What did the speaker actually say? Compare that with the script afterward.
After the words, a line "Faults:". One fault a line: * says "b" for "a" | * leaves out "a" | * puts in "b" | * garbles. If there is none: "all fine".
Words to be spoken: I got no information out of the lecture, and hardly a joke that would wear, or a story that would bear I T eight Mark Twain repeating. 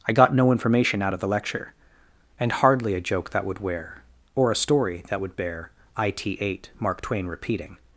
I got no information out of the lecture, and hardly a joke that would wear, or a story that would bear I T eight Mark Twain repeating.
Faults:
all fine